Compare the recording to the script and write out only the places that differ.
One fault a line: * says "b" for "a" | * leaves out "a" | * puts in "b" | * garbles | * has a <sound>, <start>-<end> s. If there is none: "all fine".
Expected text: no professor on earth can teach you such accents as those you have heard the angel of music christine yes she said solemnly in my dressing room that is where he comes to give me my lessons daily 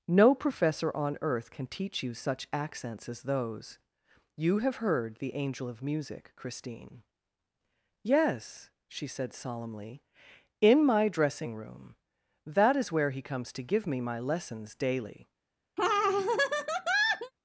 * has a laugh, 15.8-17.3 s